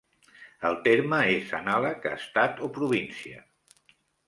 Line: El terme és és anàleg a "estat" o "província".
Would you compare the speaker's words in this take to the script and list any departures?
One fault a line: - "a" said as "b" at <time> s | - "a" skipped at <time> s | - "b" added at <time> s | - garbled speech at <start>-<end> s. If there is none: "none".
- "és" skipped at 1.5 s